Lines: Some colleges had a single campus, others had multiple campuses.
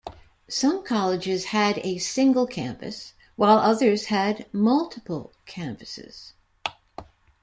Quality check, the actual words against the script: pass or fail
fail